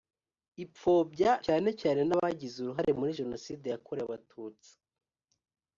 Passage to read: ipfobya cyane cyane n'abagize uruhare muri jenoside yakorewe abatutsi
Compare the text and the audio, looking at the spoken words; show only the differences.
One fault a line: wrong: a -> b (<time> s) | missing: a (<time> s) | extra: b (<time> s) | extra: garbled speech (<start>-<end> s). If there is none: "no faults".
no faults